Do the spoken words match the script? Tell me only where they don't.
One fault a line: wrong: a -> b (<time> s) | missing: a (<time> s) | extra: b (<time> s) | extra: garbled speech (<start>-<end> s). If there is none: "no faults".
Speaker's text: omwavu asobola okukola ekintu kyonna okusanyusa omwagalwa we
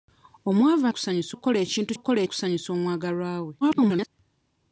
wrong: asobola -> okusanyusa (0.9 s)
wrong: kyonna -> okukola (1.9 s)
extra: garbled speech (3.6-4.1 s)